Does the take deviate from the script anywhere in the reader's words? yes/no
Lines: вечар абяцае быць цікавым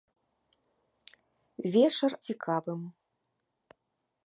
yes